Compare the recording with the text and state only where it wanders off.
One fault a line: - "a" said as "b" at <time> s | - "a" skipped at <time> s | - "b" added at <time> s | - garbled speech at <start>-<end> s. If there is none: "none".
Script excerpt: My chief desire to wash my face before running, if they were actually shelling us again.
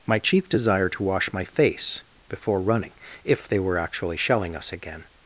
none